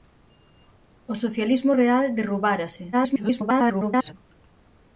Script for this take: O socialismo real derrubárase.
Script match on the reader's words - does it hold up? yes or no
no